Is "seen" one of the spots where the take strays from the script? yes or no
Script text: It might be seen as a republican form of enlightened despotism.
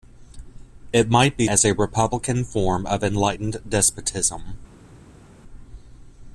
yes